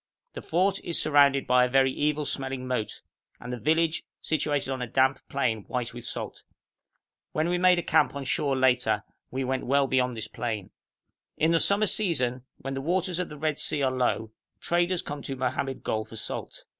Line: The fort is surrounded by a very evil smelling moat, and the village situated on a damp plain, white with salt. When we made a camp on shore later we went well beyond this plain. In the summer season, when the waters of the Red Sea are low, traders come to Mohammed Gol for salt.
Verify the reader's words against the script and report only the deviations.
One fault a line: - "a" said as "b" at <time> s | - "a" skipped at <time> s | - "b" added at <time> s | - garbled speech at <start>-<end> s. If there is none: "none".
none